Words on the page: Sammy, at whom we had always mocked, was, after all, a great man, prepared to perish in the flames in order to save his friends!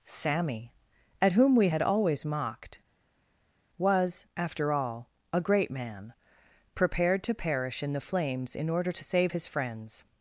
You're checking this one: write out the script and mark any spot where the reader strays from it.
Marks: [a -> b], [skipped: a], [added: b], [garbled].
Sammy, at whom we had always mocked, was, after all, a great man, prepared to perish in the flames in order to save his friends!